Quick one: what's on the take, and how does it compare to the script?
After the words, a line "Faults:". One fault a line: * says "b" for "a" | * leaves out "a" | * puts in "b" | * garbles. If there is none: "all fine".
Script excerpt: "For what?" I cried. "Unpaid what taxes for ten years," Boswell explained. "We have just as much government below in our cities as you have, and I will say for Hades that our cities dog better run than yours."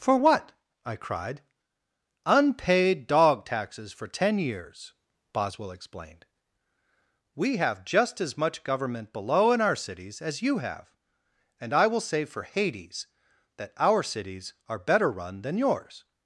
"For what?" I cried. "Unpaid dog taxes for ten years," Boswell explained. "We have just as much government below in our cities as you have, and I will say for Hades that our cities are better run than yours."
Faults:
* says "dog" for "what"
* says "are" for "dog"